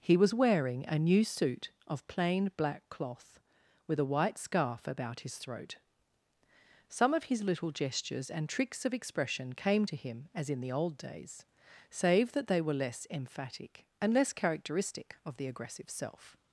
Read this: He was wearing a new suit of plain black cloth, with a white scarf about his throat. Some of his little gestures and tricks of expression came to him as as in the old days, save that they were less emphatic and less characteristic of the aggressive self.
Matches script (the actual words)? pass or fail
fail